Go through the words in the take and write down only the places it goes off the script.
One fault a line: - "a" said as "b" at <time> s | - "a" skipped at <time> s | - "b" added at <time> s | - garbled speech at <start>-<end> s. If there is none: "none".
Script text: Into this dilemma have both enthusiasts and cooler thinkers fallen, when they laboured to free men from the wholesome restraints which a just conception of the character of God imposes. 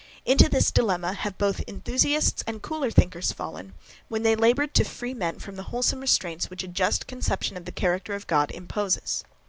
none